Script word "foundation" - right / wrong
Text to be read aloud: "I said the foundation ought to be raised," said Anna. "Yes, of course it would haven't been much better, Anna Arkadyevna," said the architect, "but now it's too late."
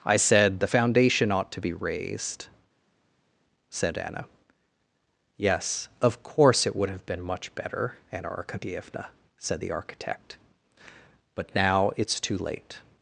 right